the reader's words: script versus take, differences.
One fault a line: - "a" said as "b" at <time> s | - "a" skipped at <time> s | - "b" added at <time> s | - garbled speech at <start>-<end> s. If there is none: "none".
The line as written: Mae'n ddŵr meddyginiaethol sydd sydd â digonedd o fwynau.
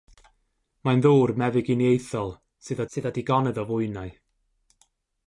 none